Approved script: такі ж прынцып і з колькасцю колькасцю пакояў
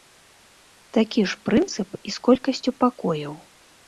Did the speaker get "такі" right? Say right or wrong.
right